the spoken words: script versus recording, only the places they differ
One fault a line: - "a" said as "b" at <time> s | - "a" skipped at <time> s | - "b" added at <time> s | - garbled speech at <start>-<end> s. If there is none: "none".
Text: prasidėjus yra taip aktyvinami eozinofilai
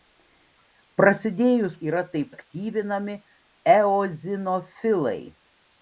none